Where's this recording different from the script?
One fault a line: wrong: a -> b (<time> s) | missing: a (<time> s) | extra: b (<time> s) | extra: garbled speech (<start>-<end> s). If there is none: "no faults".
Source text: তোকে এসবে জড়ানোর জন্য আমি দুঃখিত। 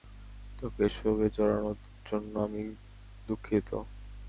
no faults